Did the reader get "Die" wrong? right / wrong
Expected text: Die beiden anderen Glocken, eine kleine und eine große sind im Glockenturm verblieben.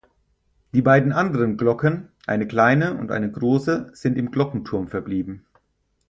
right